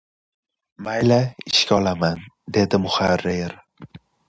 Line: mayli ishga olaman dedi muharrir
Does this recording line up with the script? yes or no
yes